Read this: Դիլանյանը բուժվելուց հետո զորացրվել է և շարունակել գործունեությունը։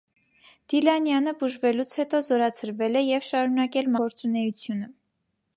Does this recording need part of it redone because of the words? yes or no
no